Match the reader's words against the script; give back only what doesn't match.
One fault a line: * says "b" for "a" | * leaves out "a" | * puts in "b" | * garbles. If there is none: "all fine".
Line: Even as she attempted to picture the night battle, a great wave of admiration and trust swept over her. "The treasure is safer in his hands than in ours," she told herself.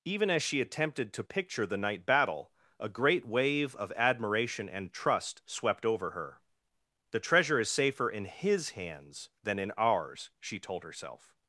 all fine